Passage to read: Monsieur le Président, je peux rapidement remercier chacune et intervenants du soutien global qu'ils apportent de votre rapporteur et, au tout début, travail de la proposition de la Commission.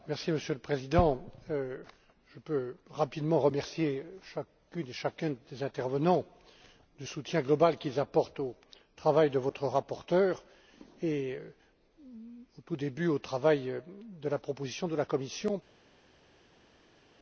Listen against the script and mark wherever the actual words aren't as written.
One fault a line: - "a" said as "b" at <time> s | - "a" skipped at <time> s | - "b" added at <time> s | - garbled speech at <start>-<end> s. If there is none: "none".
- "chacun des" added at 4.9 s
- "au travail" added at 8.4 s
- "au" added at 13.1 s